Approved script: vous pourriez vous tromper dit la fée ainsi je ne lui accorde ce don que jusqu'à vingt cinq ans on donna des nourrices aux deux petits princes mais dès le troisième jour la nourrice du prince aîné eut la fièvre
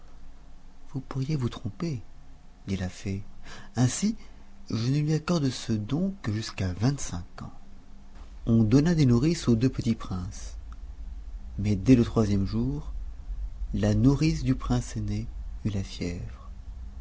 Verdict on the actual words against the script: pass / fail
pass